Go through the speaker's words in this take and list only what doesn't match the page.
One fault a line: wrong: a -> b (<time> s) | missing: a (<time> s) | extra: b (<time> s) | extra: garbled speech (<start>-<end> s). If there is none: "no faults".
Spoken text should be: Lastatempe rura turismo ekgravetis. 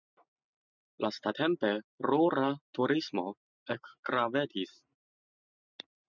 no faults